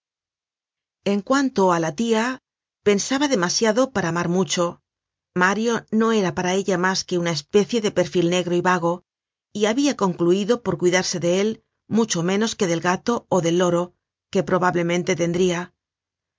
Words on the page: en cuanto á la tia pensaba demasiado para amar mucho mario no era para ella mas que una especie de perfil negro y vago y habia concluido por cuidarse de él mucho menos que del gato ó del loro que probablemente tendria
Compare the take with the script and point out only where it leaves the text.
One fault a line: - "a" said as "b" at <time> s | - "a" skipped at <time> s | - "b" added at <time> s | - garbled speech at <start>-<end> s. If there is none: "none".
none